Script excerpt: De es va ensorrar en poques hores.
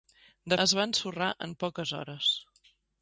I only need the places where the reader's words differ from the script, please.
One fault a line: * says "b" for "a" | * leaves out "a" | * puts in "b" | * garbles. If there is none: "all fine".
all fine